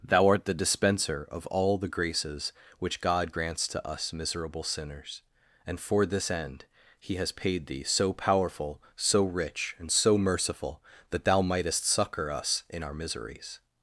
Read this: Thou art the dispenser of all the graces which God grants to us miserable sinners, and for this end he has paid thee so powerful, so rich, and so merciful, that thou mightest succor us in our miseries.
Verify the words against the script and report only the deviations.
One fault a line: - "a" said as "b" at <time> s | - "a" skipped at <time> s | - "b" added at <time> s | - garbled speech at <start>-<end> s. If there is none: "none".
none